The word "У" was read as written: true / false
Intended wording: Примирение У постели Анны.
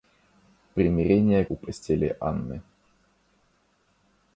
true